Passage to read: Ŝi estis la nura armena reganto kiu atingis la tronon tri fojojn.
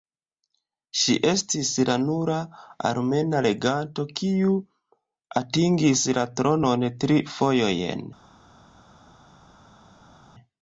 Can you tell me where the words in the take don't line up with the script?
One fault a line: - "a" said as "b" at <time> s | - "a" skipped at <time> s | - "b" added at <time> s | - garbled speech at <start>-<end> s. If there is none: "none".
none